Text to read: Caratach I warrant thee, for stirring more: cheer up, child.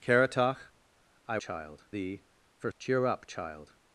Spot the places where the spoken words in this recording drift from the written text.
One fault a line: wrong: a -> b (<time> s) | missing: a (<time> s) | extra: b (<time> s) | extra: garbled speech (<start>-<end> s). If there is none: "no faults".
wrong: warrant -> child (1.4 s)
missing: stirring more (2.7 s)